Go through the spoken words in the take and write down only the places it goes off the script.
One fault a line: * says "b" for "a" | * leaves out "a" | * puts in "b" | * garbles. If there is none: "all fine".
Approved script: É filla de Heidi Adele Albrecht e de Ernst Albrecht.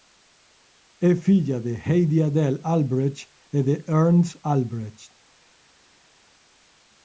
all fine